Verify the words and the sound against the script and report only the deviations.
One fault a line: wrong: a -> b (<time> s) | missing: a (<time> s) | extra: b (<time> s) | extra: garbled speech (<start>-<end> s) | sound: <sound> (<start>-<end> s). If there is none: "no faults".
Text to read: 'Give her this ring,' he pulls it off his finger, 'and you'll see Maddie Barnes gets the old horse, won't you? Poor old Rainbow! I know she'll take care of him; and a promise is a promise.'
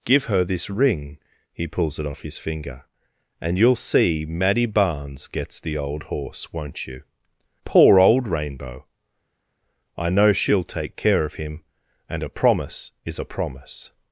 no faults